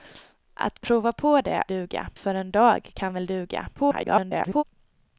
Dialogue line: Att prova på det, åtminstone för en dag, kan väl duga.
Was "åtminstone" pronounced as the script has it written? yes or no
no